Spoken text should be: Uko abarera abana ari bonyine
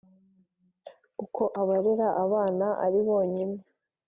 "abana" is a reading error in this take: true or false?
false